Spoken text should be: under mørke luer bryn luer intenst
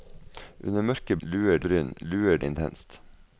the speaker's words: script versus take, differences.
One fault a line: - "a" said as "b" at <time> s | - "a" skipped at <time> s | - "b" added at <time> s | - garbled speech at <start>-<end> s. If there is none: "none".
none